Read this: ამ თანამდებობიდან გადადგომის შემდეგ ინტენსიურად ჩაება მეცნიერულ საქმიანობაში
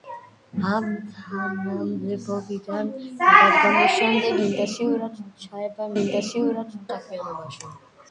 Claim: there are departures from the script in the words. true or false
true